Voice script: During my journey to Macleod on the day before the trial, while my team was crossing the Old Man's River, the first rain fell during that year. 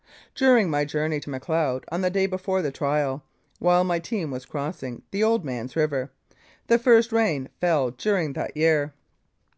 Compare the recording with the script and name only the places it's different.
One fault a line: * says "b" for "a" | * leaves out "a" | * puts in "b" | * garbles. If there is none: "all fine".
all fine